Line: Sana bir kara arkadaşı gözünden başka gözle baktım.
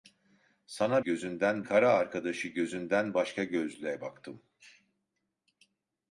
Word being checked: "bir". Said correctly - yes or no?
no